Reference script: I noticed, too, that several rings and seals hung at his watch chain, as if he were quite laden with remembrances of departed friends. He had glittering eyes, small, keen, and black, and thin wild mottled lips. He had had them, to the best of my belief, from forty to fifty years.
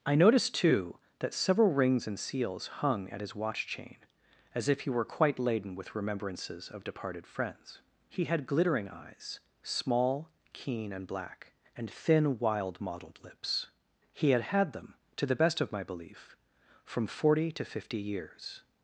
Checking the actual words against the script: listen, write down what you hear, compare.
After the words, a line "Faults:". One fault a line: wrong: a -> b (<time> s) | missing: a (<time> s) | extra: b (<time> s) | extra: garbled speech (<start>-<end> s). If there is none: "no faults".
I noticed, too, that several rings and seals hung at his watch chain, as if he were quite laden with remembrances of departed friends. He had glittering eyes, small, keen, and black, and thin wild mottled lips. He had had them, to the best of my belief, from forty to fifty years.
Faults:
no faults